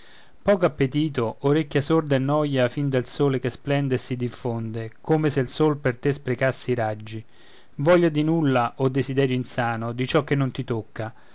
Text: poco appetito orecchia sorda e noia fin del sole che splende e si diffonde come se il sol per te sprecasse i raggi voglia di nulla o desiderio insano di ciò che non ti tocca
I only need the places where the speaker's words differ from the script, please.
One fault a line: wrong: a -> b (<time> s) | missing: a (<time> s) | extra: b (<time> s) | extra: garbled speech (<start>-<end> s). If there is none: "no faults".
no faults